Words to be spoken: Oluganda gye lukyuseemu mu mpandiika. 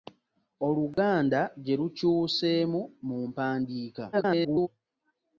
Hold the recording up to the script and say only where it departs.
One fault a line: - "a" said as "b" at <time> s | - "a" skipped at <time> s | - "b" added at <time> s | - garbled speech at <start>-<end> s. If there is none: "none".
- garbled speech at 4.1-4.7 s